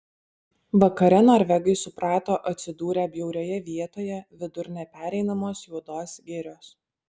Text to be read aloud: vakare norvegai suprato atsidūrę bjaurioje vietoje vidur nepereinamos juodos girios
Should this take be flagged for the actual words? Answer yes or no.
no